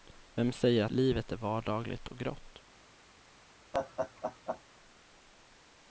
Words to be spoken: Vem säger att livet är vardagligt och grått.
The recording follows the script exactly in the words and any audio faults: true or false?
false